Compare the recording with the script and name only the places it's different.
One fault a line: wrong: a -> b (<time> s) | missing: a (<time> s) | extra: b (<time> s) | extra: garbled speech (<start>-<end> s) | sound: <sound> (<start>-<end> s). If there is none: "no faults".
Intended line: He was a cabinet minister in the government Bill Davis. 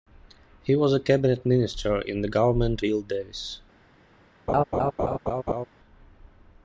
sound: laugh (4.5-5.7 s)